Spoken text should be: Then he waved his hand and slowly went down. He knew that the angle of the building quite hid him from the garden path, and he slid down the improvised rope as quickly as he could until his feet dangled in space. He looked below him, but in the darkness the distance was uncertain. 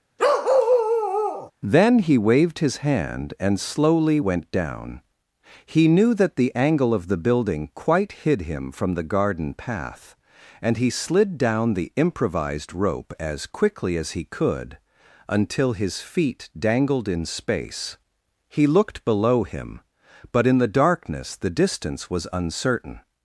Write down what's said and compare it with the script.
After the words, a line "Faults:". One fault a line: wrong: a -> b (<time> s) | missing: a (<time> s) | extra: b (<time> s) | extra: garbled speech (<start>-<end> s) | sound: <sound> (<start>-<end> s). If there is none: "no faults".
Then he waved his hand and slowly went down. He knew that the angle of the building quite hid him from the garden path, and he slid down the improvised rope as quickly as he could until his feet dangled in space. He looked below him, but in the darkness the distance was uncertain.
Faults:
sound: bark (0.2-1.5 s)